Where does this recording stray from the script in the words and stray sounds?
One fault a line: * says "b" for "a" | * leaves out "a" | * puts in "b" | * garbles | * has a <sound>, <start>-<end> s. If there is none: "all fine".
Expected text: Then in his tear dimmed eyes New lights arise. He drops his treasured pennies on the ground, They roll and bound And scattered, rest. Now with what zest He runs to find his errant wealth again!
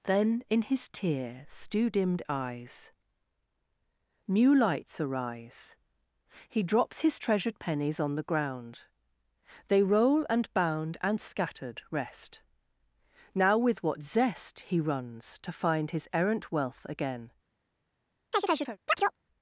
* puts in "stew"
* has a chirp, 18.3-19.2 s